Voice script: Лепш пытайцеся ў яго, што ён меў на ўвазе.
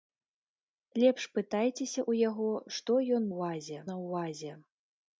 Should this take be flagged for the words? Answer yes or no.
yes